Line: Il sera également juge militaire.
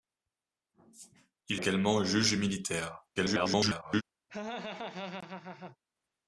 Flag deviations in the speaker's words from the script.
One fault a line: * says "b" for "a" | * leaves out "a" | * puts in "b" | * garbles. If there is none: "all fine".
* leaves out "sera"
* garbles